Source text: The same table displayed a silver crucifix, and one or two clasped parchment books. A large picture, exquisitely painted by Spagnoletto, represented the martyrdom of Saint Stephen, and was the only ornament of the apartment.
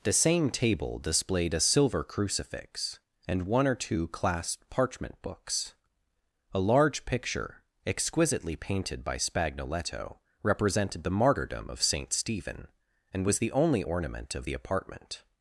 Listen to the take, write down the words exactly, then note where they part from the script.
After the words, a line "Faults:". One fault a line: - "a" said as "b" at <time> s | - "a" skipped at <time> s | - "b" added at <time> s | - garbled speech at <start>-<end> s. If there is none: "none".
The same table displayed a silver crucifix, and one or two clasped parchment books. A large picture, exquisitely painted by Spagnoletto, represented the martyrdom of Saint Stephen, and was the only ornament of the apartment.
Faults:
none